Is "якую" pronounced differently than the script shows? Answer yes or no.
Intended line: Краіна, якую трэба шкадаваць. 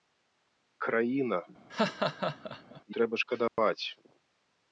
yes